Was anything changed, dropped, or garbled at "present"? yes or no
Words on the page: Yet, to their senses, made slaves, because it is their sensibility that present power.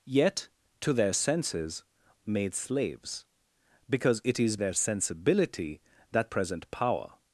no